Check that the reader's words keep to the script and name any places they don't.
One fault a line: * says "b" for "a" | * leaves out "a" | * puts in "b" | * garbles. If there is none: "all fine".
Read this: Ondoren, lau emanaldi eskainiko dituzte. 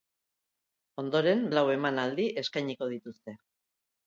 all fine